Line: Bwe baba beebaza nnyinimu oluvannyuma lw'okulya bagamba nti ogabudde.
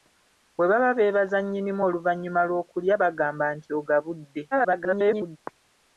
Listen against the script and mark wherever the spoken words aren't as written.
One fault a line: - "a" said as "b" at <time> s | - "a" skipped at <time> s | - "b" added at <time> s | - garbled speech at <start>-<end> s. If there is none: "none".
- garbled speech at 4.5-5.4 s